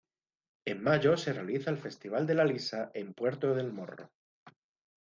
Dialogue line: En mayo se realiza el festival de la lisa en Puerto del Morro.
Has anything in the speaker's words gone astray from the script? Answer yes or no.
no